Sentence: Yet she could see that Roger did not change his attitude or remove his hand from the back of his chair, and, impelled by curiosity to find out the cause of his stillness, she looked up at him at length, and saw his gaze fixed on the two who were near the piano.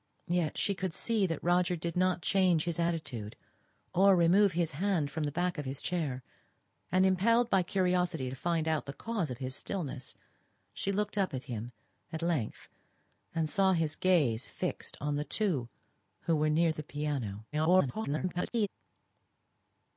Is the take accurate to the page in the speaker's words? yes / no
no